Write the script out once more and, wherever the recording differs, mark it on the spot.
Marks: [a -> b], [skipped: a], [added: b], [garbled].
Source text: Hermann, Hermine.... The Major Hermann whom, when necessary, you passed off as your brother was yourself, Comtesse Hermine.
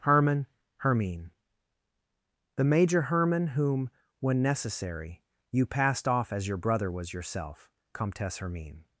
Hermann, Hermine.... The Major Hermann whom, when necessary, you passed off as your brother was yourself, Comtesse Hermine.